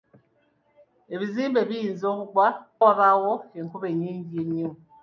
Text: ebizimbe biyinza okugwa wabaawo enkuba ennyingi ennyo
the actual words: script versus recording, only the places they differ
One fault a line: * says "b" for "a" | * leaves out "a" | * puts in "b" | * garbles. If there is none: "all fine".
all fine